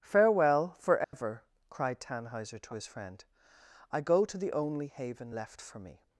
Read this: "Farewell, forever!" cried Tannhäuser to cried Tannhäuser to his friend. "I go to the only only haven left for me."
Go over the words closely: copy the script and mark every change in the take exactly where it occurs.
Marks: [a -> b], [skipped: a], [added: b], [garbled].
"Farewell, forever!" cried Tannhäuser to [skipped: cried Tannhäuser to] his friend. "I go to the only [skipped: only] haven left for me."